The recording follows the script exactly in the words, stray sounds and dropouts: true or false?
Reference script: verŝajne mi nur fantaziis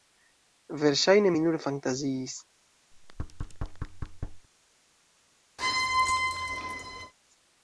false